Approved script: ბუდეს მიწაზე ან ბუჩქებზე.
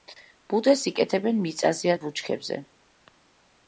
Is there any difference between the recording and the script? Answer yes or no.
yes